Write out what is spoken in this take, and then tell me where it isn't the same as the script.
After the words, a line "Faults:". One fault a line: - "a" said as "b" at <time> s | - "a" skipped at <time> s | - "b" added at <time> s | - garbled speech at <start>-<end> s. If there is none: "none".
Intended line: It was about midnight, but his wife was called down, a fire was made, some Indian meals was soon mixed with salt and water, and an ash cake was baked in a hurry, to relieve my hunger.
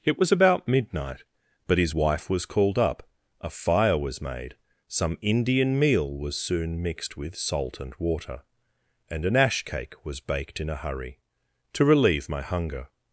It was about midnight, but his wife was called up, a fire was made, some Indian meal was soon mixed with salt and water, and an ash cake was baked in a hurry, to relieve my hunger.
Faults:
- "down" said as "up" at 2.8 s
- "meals" said as "meal" at 5.8 s